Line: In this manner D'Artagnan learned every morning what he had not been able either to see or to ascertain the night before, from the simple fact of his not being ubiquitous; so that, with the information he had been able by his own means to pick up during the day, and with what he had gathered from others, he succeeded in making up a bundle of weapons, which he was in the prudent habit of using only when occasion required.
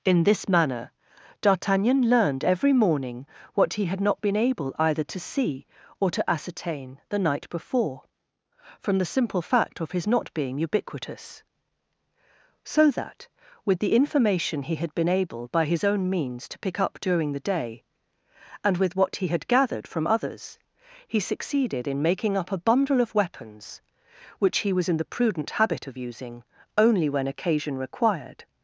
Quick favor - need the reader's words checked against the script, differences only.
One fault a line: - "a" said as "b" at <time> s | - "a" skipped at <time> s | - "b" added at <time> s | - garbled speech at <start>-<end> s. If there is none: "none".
none